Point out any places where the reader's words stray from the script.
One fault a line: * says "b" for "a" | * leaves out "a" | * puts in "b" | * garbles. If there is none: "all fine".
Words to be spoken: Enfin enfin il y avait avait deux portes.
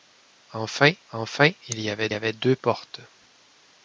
all fine